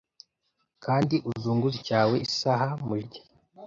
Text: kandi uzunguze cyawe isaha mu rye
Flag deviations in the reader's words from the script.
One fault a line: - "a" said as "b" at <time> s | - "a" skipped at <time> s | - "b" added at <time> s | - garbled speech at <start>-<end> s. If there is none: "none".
none